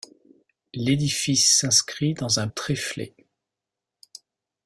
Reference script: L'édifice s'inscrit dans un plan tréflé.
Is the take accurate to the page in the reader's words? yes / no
no